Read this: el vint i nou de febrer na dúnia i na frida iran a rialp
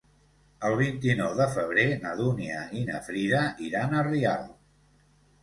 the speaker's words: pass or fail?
pass